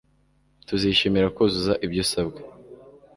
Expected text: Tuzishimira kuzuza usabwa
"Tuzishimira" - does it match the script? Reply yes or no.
yes